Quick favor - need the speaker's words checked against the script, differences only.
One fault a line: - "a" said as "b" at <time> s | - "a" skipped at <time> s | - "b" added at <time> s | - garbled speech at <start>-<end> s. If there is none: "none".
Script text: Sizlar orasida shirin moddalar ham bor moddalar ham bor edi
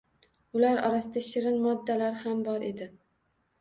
- "Sizlar" said as "Ular" at 0.6 s
- "moddalar ham bor" skipped at 2.7 s